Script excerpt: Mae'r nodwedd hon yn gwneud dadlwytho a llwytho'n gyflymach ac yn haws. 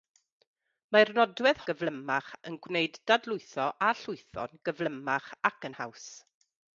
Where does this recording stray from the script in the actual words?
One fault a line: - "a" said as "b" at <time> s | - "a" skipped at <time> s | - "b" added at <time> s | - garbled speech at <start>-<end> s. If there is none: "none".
- "hon" said as "gyflymach" at 1.7 s